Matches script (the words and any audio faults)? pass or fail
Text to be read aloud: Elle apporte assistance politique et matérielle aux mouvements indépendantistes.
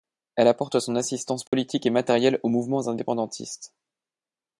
fail